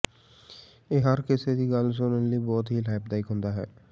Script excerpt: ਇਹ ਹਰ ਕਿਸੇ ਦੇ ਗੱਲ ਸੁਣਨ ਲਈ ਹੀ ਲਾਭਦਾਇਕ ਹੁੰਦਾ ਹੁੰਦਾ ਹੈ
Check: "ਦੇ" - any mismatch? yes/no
yes